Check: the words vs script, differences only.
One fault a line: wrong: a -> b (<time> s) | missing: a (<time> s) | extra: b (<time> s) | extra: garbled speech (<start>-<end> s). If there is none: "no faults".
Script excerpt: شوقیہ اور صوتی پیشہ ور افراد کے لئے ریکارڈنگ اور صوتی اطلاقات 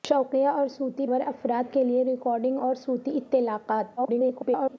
missing: پیشہ (1.1 s)
extra: garbled speech (4.0-4.8 s)